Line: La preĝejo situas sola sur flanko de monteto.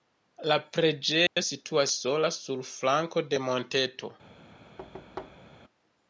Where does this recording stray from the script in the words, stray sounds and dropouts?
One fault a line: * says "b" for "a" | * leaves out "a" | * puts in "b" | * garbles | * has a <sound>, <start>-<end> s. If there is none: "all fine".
* has a dropout, 1.3-1.4 s
* has a thud, 4.8-5.6 s